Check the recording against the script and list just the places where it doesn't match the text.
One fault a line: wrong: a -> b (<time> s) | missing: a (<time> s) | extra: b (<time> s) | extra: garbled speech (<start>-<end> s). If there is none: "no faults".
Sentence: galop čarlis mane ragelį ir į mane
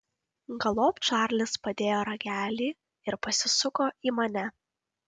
wrong: mane -> padėjo (1.7 s)
extra: pasisuko (3.3 s)